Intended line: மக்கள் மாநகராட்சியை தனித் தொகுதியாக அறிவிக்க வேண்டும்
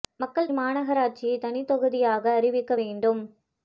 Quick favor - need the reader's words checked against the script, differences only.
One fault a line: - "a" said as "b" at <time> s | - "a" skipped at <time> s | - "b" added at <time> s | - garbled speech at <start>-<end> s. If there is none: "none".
none